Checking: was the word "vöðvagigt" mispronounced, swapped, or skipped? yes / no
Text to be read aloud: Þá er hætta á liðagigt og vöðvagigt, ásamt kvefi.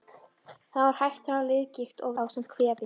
yes